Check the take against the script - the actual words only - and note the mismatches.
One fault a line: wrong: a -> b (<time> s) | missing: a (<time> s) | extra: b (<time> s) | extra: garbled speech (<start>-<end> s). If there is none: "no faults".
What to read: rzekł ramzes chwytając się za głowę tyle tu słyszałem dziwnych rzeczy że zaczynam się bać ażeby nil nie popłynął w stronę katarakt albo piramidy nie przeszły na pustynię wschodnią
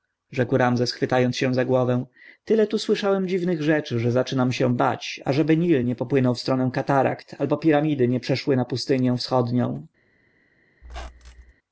no faults